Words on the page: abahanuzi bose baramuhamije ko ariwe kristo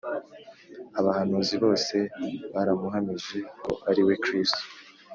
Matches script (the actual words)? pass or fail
pass